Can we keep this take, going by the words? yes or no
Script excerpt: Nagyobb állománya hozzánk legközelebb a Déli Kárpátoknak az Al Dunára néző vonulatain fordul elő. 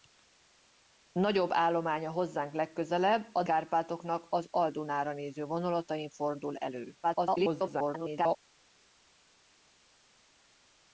no